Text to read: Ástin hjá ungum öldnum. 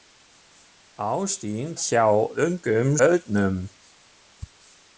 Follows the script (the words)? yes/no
yes